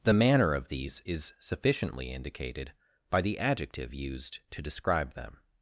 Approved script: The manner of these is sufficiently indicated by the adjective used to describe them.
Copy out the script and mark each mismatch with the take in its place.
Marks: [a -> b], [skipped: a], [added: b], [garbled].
The manner of these is sufficiently indicated by the adjective used to describe them.